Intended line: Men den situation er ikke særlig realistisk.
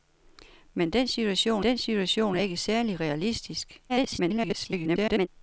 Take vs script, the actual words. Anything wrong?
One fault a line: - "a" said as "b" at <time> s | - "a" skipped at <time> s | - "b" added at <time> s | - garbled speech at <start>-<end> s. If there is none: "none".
- "den situation" added at 1.6 s
- garbled speech at 3.9-5.3 s